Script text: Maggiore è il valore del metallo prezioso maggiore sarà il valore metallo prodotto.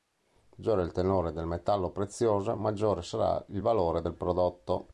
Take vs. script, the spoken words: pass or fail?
fail